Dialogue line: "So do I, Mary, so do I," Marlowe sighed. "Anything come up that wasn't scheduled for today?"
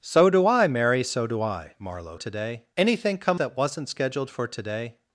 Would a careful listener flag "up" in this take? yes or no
yes